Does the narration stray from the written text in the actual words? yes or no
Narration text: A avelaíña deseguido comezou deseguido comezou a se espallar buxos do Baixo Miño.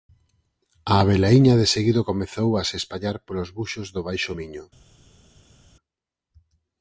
yes